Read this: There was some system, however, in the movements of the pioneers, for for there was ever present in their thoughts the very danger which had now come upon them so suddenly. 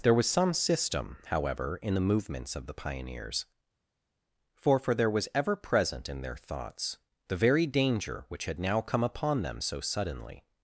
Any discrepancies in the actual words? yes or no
no